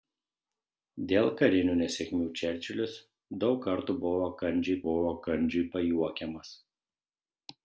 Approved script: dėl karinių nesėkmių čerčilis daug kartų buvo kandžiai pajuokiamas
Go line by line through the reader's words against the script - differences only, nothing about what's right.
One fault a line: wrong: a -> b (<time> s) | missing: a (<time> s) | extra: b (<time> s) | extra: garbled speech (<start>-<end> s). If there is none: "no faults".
extra: buvo kandžiai (4.9 s)